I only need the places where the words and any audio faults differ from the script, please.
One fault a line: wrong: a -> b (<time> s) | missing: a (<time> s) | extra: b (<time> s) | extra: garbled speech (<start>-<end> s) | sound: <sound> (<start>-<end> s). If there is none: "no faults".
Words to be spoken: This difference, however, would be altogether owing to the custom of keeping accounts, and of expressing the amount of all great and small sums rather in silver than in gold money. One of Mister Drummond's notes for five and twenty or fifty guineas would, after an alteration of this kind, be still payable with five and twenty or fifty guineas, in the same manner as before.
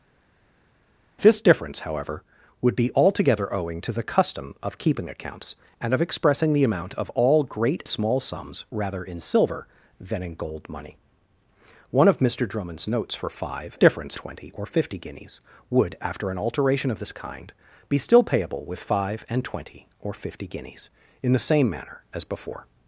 missing: and (7.8 s)
wrong: and -> difference (13.8 s)